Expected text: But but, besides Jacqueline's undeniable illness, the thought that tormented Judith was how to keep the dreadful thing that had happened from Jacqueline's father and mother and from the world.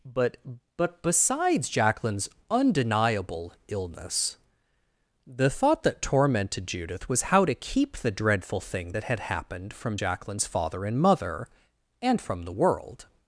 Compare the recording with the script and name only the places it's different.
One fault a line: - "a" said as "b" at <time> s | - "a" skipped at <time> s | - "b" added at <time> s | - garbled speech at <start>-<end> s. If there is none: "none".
none